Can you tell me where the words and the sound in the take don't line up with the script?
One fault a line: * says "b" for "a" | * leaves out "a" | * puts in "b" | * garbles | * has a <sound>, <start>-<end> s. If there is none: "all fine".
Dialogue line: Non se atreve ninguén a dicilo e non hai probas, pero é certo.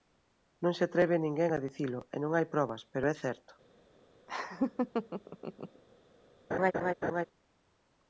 * has a laugh, 4.3-5.8 s
* has a laugh, 6.5-7.2 s